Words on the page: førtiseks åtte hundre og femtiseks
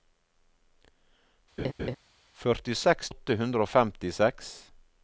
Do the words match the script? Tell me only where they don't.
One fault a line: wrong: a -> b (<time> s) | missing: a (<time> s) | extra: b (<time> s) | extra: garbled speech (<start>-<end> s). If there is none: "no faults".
no faults